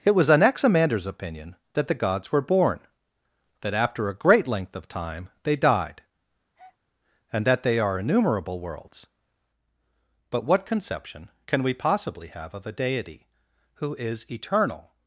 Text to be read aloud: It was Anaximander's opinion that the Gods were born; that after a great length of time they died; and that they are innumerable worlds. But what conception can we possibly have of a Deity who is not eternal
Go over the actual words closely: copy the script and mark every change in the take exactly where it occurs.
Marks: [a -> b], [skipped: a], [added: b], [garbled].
It was Anaximander's opinion that the Gods were born; that after a great length of time they died; and that they are innumerable worlds. But what conception can we possibly have of a Deity who is [skipped: not] eternal